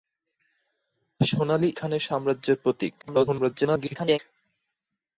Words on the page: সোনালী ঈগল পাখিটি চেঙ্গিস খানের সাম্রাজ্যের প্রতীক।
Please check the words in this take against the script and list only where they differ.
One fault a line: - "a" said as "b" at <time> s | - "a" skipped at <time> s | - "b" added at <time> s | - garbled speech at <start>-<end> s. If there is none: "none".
- "ঈগল পাখিটি চেঙ্গিস" skipped at 1.7 s
- garbled speech at 3.0-4.2 s